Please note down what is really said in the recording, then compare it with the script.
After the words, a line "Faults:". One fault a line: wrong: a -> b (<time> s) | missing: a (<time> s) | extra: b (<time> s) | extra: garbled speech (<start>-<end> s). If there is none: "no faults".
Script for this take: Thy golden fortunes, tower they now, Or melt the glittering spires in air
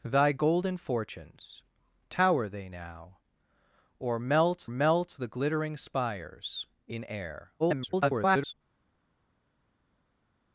Thy golden fortunes, tower they now, Or melt melt the glittering spires in air [garbled]
Faults:
extra: melt (4.7 s)
extra: garbled speech (7.6-8.5 s)